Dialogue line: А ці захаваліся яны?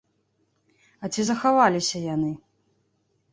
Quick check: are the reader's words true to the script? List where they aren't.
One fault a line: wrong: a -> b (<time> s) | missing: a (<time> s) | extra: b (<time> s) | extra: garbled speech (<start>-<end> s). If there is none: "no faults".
no faults